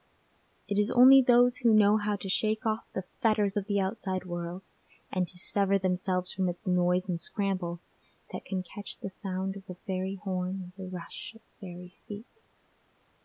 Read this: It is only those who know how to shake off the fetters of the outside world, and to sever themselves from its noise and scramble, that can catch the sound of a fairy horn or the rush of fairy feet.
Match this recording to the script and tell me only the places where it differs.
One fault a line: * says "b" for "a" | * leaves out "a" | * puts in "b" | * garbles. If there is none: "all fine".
all fine